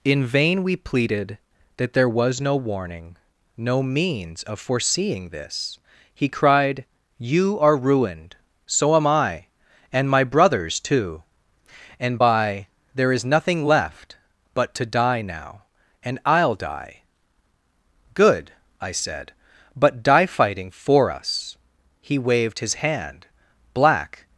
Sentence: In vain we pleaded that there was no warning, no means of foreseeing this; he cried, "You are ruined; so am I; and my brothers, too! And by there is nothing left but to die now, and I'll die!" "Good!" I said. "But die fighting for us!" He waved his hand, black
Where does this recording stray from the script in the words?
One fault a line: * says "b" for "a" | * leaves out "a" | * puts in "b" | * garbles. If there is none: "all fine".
all fine